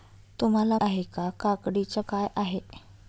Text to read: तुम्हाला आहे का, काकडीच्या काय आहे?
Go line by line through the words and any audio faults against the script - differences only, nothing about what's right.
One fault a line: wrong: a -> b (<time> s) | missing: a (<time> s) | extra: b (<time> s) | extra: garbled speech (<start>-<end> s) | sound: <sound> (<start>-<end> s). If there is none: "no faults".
no faults